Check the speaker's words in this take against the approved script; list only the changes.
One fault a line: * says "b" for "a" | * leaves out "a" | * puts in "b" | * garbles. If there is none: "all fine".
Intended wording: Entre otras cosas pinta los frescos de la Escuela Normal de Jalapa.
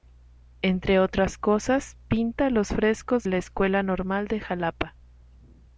* leaves out "de"